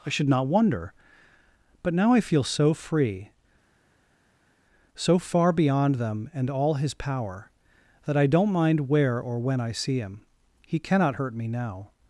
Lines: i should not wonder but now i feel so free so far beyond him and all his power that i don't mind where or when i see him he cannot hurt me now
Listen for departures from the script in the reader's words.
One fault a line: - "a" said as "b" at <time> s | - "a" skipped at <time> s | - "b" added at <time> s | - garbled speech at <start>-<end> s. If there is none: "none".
- "him" said as "them" at 5.9 s